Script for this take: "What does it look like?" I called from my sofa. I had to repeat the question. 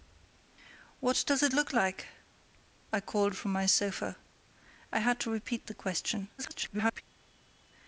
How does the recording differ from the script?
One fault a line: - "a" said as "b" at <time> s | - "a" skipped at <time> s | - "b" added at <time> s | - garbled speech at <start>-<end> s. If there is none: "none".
- garbled speech at 6.4-7.0 s